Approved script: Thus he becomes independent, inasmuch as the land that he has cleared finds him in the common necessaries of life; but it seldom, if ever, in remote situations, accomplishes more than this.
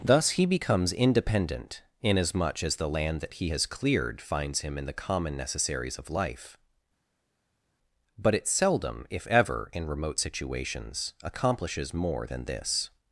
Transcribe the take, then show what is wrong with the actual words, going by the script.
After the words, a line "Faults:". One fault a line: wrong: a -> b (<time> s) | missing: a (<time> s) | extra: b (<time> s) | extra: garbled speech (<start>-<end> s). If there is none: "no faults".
Thus he becomes independent, inasmuch as the land that he has cleared finds him in the common necessaries of life; but it seldom, if ever, in remote situations, accomplishes more than this.
Faults:
no faults